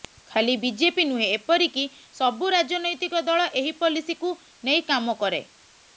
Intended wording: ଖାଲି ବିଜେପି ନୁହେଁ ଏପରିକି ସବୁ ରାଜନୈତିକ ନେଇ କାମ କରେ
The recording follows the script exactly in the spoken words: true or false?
false